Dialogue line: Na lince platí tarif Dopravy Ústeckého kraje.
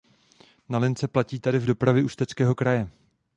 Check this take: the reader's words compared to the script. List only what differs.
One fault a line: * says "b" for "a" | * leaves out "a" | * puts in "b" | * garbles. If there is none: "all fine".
all fine